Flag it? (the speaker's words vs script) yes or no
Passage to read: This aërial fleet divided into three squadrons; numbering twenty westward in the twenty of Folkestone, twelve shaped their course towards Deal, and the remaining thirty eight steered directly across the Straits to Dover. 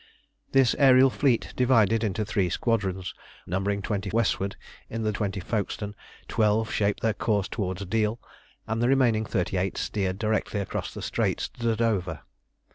no